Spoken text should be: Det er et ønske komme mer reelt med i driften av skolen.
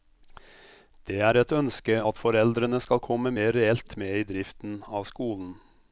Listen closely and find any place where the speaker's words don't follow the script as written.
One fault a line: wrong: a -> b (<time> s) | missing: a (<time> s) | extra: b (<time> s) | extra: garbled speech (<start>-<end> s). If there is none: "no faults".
extra: at foreldrene skal (2.1 s)